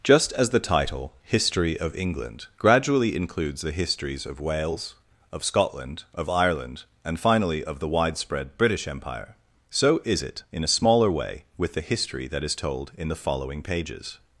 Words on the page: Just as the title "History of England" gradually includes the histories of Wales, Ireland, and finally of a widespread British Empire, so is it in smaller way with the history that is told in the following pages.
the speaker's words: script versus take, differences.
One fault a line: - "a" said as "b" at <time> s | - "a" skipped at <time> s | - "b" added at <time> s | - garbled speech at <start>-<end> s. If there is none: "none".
- "of Scotland of" added at 5.3 s
- "a" said as "the" at 7.8 s
- "a" added at 10.6 s